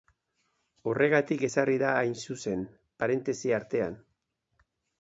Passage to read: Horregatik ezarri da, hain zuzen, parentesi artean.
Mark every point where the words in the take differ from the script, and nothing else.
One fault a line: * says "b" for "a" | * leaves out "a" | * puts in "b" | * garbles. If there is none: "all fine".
all fine